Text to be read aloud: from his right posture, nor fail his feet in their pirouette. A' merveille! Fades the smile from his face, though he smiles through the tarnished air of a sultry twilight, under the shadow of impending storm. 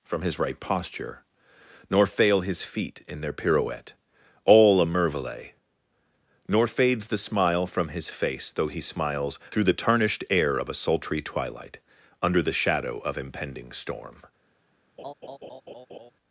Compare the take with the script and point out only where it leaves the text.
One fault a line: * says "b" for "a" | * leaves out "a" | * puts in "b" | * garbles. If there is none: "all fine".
* puts in "All"
* puts in "Nor"